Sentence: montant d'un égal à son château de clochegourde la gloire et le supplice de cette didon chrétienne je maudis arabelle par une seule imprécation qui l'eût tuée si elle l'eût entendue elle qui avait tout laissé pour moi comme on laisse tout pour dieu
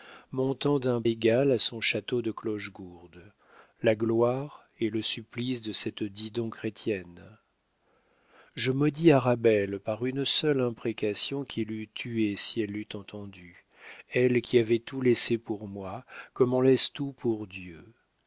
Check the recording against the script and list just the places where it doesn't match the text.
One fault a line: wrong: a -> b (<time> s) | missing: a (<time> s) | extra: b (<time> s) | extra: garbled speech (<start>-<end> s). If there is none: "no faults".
no faults